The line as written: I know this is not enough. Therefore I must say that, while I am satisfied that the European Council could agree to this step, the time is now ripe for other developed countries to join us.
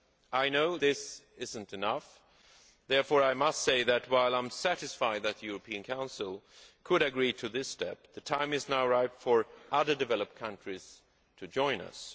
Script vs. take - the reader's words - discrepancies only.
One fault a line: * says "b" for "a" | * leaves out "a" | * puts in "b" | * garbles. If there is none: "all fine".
all fine